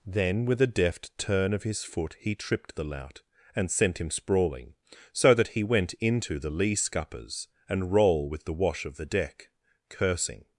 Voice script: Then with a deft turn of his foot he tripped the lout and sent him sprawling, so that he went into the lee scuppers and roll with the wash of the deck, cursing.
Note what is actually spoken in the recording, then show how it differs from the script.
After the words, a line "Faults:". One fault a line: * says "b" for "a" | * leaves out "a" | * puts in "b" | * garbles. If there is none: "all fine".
Then with a deft turn of his foot he tripped the lout and sent him sprawling, so that he went into the lee scuppers and roll with the wash of the deck, cursing.
Faults:
all fine